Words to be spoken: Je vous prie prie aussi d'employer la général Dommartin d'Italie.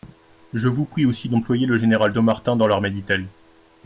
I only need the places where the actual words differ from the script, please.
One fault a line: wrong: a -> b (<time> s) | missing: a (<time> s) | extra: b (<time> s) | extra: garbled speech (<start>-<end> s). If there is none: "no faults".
missing: prie (1.1 s)
wrong: la -> le (1.7 s)
extra: dans l'armée (2.6 s)